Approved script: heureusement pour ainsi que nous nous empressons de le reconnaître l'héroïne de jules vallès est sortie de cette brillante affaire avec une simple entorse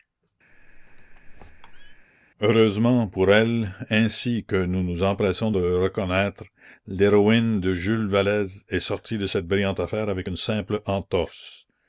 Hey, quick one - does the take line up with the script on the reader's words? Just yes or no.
no